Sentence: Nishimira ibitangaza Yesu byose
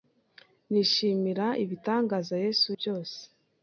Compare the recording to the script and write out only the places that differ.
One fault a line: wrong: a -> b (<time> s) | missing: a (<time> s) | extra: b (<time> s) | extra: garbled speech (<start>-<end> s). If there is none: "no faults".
no faults